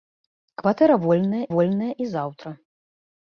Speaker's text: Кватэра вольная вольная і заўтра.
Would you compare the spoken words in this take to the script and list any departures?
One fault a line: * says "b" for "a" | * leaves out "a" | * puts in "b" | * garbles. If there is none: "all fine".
all fine